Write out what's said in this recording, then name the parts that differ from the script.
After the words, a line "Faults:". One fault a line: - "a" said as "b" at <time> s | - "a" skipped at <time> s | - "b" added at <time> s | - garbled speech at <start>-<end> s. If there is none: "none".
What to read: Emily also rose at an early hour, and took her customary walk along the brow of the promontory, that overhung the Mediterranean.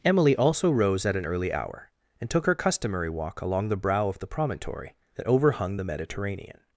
Emily also rose at an early hour, and took her customary walk along the brow of the promontory, that overhung the Mediterranean.
Faults:
none